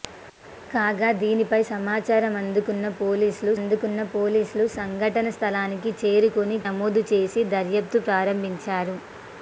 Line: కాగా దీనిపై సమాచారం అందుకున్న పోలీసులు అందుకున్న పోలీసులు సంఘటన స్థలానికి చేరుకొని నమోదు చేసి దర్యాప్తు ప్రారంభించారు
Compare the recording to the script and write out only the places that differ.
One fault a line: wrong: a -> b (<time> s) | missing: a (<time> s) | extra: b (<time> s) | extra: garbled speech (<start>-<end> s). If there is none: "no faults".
no faults